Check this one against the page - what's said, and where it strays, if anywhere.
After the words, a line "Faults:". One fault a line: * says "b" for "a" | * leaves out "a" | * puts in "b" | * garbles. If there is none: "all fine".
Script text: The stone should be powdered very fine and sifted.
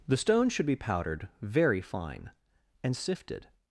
The stone should be powdered very fine and sifted.
Faults:
all fine